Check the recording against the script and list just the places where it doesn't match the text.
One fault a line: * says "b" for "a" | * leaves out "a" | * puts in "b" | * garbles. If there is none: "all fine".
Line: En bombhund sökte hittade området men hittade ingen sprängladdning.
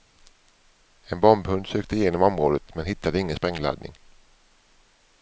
* says "igenom" for "hittade"